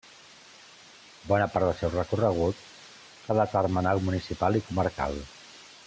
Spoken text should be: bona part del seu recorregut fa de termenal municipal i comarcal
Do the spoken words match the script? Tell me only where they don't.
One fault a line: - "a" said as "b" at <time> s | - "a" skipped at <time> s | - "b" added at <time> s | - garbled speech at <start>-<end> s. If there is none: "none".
none